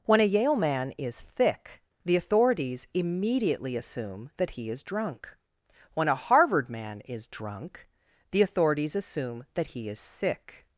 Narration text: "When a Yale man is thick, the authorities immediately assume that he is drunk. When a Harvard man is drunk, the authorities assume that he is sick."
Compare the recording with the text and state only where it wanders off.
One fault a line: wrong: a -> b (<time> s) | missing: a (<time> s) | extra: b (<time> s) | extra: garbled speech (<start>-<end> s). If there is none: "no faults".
no faults